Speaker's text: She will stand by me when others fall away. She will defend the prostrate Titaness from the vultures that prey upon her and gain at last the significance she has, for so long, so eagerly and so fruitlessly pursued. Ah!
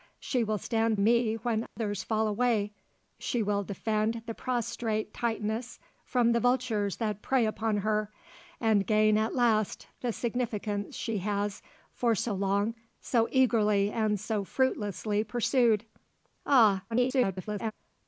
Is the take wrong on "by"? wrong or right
wrong